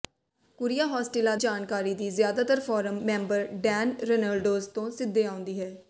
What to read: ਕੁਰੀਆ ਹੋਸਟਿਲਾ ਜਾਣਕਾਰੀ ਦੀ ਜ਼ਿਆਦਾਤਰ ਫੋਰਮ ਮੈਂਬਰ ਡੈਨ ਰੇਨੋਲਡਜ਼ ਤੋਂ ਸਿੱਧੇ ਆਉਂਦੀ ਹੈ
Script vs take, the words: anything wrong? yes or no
no